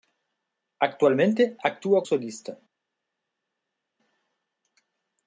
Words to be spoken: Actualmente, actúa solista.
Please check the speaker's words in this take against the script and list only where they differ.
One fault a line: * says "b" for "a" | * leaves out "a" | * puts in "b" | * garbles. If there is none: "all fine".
all fine